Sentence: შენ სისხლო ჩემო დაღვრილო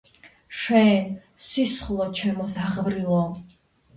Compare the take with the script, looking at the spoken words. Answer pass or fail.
pass